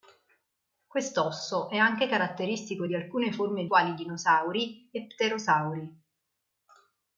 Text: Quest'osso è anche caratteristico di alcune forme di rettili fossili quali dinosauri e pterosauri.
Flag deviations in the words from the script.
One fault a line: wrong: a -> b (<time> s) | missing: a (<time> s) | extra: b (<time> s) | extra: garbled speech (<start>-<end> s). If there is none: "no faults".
missing: di rettili fossili (3.7 s)